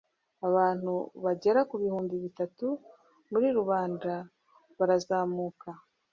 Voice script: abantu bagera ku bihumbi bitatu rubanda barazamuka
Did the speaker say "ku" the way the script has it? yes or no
yes